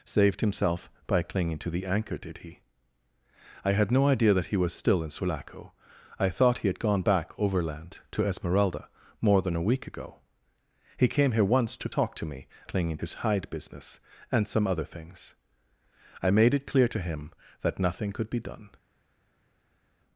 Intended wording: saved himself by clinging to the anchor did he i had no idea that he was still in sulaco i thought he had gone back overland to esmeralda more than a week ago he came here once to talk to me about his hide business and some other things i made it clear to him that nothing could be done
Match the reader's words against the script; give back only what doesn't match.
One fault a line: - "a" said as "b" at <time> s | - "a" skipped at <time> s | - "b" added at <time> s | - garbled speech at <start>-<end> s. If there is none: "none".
- "about" said as "clinging" at 12.6 s